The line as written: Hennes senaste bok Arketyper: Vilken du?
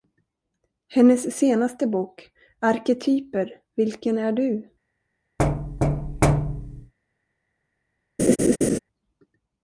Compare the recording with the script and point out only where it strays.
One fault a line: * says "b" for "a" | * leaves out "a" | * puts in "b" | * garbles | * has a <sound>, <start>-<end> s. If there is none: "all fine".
* puts in "är"
* has a thud, 5.4-6.9 s
* has a laugh, 8.2-8.8 s